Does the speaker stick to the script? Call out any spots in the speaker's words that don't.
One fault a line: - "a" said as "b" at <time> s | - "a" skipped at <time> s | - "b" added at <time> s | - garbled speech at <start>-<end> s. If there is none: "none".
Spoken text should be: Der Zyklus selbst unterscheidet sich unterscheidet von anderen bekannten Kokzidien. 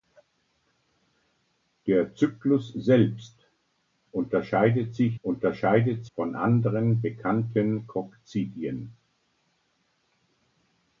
none